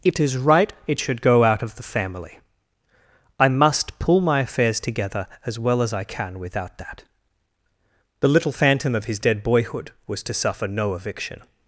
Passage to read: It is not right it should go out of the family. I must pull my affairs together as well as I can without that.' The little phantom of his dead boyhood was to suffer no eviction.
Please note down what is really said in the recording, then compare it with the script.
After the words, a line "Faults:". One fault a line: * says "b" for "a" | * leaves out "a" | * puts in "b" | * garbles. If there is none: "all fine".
It is right it should go out of the family. I must pull my affairs together as well as I can without that.' The little phantom of his dead boyhood was to suffer no eviction.
Faults:
* leaves out "not"